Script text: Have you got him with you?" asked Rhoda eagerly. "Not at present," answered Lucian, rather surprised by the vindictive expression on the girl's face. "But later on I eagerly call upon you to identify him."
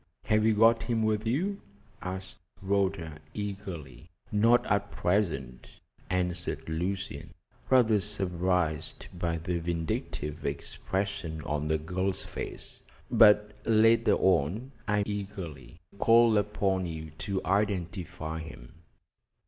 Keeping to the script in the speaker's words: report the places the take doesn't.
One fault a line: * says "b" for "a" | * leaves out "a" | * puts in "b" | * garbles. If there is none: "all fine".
all fine